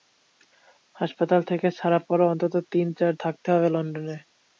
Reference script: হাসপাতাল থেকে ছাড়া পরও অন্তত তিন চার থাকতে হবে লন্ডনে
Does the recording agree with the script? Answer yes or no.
yes